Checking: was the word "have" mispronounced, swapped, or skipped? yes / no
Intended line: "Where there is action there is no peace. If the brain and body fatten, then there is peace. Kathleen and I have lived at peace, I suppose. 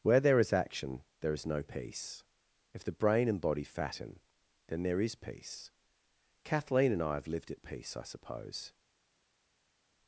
no